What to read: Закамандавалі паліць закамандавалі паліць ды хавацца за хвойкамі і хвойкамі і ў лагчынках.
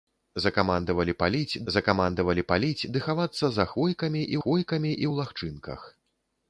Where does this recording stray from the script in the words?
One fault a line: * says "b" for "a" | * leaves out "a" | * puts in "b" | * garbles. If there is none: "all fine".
all fine